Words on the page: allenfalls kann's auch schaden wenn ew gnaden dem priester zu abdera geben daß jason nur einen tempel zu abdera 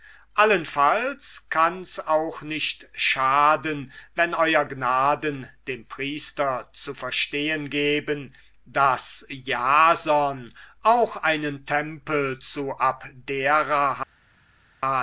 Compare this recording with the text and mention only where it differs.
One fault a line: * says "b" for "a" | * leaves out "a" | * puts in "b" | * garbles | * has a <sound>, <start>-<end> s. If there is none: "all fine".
* puts in "nicht"
* says "verstehen" for "abdera"
* says "auch" for "nur"